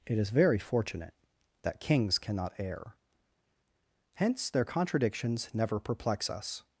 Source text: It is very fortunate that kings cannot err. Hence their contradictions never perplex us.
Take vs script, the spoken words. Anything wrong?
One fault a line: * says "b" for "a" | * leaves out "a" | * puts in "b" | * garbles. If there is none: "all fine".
all fine